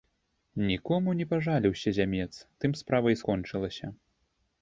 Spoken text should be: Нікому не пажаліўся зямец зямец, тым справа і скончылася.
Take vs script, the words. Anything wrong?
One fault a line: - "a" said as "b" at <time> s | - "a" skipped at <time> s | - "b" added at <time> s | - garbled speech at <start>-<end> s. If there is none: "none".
- "зямец" skipped at 2.3 s